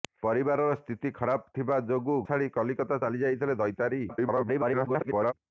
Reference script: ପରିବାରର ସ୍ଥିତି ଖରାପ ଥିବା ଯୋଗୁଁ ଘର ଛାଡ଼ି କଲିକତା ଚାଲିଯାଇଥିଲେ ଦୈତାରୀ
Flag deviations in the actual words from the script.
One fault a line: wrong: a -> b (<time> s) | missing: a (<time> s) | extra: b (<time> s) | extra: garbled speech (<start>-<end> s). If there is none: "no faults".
missing: ଘର (2.1 s)
extra: garbled speech (4.1-5.3 s)